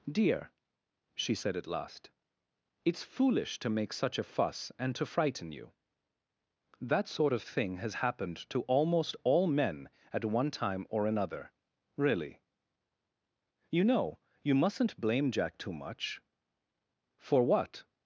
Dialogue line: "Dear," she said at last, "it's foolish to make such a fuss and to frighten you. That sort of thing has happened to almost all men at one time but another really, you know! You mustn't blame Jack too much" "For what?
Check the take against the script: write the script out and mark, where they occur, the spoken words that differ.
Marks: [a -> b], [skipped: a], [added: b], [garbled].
"Dear," she said at last, "it's foolish to make such a fuss and to frighten you. That sort of thing has happened to almost all men at one time [but -> or] another really, you know! You mustn't blame Jack too much" "For what?